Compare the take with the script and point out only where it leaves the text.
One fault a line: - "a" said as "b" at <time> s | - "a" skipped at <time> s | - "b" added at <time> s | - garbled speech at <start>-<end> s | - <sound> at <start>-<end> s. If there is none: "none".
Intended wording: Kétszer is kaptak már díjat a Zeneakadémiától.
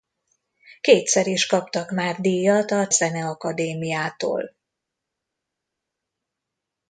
none